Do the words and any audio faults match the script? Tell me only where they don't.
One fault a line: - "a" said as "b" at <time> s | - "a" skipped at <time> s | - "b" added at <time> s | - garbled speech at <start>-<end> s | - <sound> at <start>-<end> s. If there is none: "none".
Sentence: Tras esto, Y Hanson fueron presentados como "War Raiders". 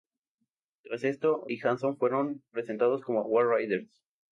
none